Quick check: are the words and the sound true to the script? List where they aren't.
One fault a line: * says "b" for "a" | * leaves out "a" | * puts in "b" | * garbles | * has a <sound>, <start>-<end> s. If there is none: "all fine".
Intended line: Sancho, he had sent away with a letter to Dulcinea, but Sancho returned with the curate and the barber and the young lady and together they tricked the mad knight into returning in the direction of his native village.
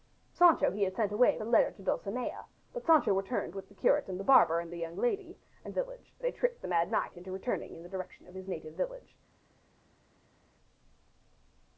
* leaves out "with"
* says "village" for "together"